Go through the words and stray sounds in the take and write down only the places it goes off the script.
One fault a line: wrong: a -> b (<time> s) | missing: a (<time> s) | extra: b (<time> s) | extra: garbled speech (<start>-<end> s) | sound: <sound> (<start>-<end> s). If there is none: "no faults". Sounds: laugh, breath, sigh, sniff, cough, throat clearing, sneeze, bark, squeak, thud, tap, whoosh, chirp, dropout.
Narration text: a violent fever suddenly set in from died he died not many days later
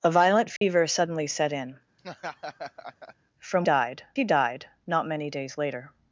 sound: dropout (0.6-0.6 s)
sound: laugh (2.0-3.2 s)